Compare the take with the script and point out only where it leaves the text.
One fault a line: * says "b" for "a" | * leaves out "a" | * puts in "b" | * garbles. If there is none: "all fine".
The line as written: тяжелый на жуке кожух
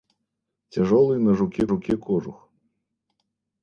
* puts in "жуке"